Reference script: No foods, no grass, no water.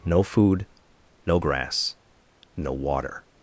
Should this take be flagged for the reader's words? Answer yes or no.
yes